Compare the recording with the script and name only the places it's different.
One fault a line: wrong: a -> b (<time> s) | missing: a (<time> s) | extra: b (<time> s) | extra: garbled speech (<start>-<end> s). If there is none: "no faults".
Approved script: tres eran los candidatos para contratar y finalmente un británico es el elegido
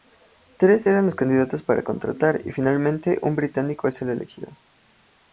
no faults